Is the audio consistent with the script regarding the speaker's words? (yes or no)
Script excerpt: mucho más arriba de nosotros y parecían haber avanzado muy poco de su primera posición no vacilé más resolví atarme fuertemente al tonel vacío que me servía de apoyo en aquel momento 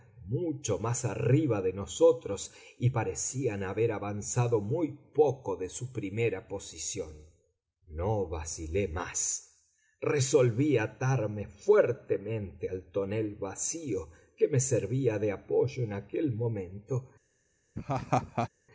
yes